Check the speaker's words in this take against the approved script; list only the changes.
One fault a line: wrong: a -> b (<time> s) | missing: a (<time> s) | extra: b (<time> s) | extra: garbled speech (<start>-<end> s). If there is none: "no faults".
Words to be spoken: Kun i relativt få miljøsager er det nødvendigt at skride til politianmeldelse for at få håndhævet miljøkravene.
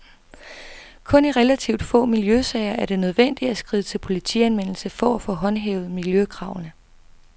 no faults